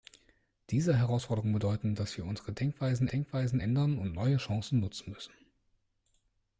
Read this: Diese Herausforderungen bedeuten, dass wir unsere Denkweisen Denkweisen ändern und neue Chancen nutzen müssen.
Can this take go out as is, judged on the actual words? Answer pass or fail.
pass